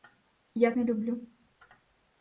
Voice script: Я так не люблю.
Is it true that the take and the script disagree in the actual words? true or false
true